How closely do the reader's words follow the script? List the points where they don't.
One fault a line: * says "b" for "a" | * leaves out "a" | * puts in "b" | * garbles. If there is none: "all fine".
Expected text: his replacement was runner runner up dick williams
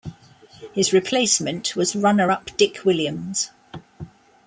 * leaves out "runner"